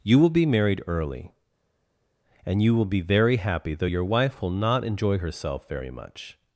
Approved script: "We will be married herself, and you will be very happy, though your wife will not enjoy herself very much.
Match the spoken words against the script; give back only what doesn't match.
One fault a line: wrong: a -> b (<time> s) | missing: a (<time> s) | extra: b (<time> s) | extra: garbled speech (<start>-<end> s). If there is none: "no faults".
wrong: We -> You (0.0 s)
wrong: herself -> early (0.9 s)